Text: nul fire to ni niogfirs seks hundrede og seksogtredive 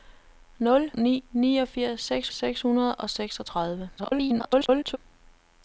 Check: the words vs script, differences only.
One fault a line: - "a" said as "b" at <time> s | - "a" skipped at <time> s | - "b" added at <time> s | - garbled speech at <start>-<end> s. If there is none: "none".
- "fire to" skipped at 0.9 s
- "seks" added at 2.3 s
- garbled speech at 4.0-5.0 s